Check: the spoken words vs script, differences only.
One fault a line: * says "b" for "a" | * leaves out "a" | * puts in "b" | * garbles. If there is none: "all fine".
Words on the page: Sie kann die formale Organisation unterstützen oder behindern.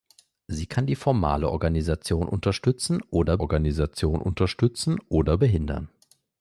* puts in "Organisation unterstützen oder"